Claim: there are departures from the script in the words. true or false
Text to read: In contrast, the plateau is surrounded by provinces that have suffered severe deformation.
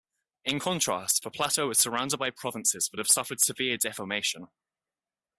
false